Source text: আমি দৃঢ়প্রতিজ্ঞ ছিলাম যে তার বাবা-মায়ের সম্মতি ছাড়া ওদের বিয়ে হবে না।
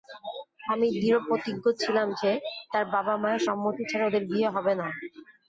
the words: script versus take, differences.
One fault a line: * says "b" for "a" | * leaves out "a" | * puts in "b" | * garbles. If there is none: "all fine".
all fine